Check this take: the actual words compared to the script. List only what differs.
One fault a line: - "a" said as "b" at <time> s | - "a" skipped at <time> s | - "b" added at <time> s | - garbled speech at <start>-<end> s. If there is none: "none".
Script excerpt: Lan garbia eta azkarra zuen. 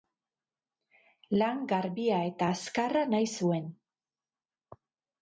- "nahi" added at 3.1 s